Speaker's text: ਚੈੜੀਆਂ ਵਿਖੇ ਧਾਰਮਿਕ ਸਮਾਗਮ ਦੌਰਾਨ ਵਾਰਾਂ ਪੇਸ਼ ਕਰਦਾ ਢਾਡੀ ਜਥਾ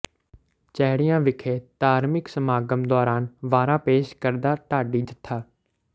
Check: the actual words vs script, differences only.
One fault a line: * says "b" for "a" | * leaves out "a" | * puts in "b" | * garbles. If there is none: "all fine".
all fine